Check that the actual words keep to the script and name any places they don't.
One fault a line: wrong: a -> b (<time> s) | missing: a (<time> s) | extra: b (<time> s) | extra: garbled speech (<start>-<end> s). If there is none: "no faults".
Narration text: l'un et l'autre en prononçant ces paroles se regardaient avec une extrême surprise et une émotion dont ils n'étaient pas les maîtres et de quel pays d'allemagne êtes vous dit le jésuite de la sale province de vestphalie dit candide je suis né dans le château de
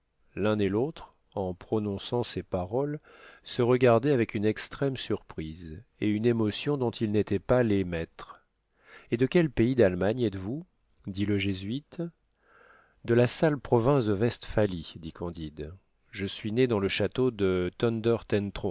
no faults